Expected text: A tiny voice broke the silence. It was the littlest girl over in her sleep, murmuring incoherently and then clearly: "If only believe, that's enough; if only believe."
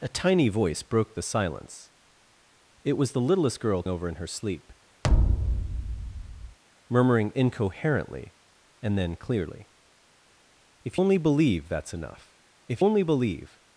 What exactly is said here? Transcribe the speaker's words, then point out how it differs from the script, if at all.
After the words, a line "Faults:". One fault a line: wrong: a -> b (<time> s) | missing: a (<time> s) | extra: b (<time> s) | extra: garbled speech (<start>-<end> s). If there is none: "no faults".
A tiny voice broke the silence. It was the littlest girl over in her sleep, murmuring incoherently and then clearly: "If only believe, that's enough; if only believe."
Faults:
no faults